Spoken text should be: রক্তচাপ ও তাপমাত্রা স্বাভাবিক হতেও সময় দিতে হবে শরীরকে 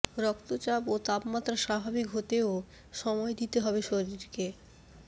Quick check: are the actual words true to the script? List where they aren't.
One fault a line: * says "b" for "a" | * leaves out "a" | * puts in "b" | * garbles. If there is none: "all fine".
all fine